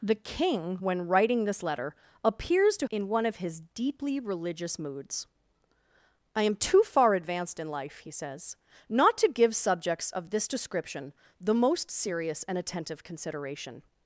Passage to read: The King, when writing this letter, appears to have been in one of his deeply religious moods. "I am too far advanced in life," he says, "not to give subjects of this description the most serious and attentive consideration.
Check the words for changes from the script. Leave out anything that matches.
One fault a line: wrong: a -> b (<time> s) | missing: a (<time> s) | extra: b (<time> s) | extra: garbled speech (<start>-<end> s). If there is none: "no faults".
missing: have been (2.9 s)